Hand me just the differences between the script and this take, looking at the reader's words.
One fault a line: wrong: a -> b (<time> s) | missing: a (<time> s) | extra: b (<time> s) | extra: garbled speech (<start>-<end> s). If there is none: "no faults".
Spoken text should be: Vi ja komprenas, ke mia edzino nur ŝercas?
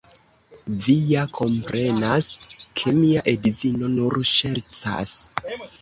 no faults